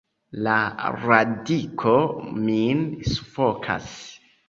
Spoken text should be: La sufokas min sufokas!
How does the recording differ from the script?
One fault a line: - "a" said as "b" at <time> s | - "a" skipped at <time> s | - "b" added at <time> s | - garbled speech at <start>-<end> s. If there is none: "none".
- "sufokas" said as "radiko" at 1.0 s